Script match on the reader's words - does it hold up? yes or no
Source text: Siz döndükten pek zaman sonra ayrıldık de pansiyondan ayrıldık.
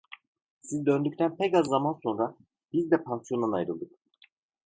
no